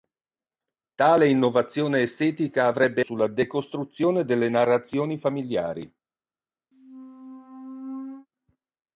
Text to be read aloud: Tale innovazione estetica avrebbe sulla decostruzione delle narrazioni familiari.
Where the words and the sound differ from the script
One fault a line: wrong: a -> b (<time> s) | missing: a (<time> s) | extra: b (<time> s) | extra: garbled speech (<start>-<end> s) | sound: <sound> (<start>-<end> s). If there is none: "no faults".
sound: squeak (6.7-8.3 s)